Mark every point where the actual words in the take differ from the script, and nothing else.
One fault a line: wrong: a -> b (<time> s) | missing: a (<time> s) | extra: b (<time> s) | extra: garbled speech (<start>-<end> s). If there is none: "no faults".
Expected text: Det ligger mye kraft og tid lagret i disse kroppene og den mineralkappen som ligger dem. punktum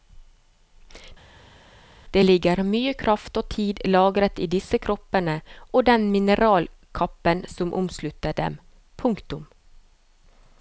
wrong: ligger -> omslutter (7.8 s)